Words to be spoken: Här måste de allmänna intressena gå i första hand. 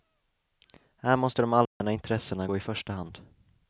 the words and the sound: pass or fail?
fail